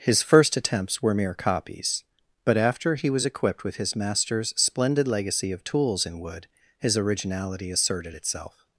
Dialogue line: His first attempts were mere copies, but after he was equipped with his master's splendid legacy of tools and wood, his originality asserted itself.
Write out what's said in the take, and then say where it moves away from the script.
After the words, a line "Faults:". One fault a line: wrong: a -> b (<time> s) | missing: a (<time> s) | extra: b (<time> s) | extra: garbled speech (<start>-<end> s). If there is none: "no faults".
His first attempts were mere copies, but after he was equipped with his master's splendid legacy of tools in wood, his originality asserted itself.
Faults:
wrong: and -> in (6.1 s)